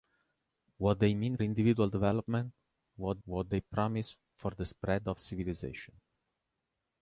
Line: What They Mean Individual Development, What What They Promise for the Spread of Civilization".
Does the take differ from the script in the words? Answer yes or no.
no